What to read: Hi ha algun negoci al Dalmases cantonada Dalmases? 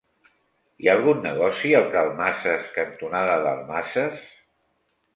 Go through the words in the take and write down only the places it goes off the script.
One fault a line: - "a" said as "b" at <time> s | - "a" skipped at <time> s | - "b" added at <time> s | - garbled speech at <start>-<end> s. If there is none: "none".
none